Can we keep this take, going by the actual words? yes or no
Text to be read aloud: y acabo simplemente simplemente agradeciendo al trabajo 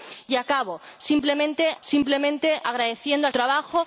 yes